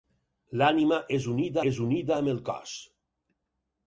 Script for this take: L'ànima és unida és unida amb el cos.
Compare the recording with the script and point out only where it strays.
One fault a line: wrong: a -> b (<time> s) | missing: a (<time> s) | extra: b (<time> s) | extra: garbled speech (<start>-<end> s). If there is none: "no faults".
no faults